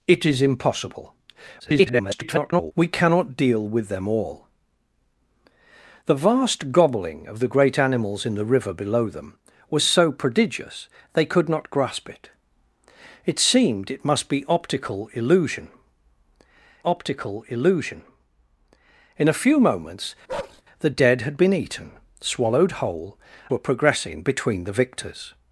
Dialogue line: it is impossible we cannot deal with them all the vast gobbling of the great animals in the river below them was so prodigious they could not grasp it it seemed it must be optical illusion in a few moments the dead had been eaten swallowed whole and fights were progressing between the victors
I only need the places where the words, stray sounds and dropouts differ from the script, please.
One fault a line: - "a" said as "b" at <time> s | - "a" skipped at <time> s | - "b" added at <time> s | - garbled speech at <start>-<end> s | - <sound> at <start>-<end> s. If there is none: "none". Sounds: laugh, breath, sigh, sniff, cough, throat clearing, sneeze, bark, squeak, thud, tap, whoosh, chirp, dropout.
- garbled speech at 1.6-2.7 s
- "optical illusion" added at 16.8 s
- bark at 20.3-20.6 s
- "and fights" skipped at 23.2 s